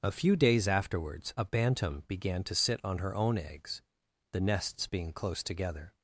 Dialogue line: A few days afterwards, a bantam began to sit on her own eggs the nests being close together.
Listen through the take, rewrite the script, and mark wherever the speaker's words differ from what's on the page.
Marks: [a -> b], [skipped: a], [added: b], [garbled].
A few days afterwards, a bantam began to sit on her own eggs the nests being close together.